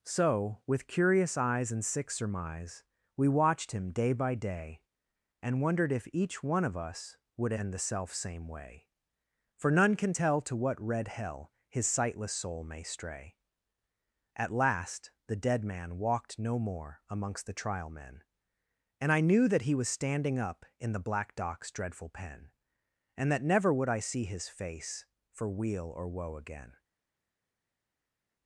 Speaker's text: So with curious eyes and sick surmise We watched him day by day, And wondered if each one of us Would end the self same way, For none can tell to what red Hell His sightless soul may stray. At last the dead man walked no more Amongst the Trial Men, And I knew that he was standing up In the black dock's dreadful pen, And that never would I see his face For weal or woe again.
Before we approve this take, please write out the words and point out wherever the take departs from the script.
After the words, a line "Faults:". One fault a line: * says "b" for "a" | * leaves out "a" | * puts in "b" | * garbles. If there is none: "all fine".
So with curious eyes and sick surmise We watched him day by day, And wondered if each one of us Would end the self same way, For none can tell to what red Hell His sightless soul may stray. At last the dead man walked no more Amongst the Trial Men, And I knew that he was standing up In the black dock's dreadful pen, And that never would I see his face For weal or woe again.
Faults:
all fine